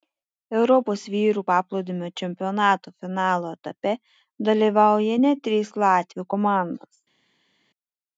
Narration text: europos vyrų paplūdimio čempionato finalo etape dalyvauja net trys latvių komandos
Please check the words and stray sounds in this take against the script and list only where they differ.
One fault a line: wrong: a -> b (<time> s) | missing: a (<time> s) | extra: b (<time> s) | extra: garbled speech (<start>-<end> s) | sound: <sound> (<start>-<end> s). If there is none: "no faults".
no faults